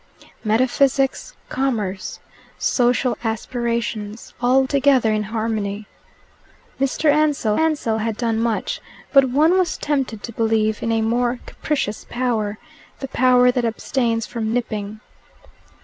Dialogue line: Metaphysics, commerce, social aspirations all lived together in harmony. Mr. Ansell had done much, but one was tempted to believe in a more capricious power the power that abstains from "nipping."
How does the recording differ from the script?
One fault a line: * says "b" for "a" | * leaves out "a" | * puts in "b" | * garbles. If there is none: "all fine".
* leaves out "lived"
* puts in "ansell"